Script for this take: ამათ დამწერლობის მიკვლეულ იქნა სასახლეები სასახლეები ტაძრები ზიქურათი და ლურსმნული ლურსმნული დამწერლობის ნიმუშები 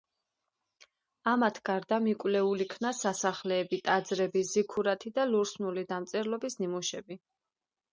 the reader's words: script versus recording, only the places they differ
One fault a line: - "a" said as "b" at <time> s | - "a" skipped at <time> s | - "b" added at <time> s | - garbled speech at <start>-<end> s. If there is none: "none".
- "დამწერლობის" said as "გარდა" at 1.7 s
- "სასახლეები" skipped at 3.8 s
- "ლურსმნული" skipped at 5.9 s